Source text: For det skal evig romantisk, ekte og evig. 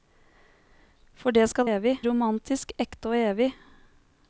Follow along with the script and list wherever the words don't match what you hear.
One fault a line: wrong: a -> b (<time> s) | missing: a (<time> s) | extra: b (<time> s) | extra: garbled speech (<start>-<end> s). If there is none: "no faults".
no faults